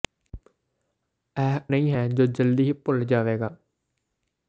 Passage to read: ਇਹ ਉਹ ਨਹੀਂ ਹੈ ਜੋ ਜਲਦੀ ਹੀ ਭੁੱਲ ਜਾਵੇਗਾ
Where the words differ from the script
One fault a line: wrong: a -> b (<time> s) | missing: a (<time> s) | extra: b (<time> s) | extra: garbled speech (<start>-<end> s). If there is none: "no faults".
missing: ਉਹ (1.6 s)